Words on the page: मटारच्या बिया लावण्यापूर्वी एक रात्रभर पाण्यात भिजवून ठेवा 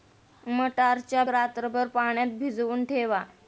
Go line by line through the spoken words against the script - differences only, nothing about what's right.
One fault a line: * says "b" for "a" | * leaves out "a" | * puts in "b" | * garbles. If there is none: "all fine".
* leaves out "बिया लावण्यापूर्वी एक"